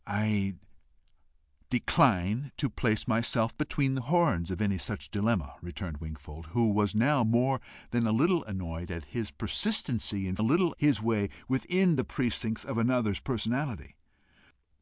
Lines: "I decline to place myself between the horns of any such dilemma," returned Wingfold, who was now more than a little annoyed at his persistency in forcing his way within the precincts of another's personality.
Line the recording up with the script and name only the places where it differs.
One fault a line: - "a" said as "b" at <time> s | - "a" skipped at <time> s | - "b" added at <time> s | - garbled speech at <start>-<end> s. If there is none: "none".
- "forcing" said as "little" at 10.4 s